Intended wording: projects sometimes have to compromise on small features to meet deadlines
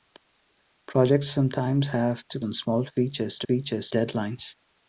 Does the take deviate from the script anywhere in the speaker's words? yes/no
yes